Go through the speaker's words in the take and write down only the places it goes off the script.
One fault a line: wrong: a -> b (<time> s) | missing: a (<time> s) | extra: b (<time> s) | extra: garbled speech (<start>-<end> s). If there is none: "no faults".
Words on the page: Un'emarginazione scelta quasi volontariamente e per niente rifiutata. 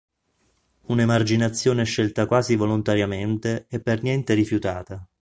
no faults